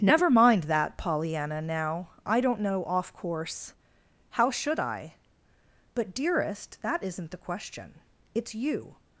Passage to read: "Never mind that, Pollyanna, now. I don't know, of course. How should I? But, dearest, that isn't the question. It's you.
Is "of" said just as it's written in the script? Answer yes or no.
no